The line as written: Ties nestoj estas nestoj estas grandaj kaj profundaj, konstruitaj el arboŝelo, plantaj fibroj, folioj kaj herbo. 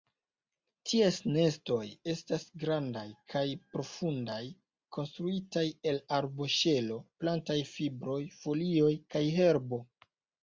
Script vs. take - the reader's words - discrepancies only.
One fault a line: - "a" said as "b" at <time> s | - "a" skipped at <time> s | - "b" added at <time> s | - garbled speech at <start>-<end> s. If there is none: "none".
- "nestoj estas" skipped at 2.5 s